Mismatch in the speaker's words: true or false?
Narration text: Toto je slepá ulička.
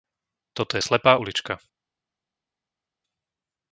false